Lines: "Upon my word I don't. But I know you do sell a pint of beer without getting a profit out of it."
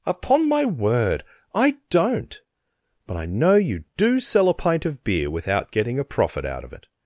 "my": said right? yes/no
yes